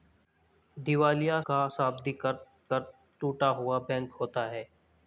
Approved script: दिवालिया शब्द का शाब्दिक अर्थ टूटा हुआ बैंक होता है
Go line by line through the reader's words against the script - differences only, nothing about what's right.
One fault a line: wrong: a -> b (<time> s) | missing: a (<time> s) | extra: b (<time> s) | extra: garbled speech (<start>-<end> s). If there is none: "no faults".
missing: शब्द (1.4 s)
extra: अर्थ (2.7 s)